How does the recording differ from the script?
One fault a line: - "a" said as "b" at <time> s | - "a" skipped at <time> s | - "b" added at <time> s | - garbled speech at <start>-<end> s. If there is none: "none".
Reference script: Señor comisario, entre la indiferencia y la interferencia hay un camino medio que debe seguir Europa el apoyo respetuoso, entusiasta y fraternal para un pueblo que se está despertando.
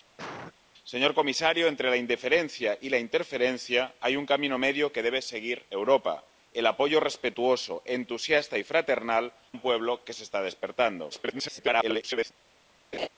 - "para" skipped at 9.3 s
- garbled speech at 11.1-12.3 s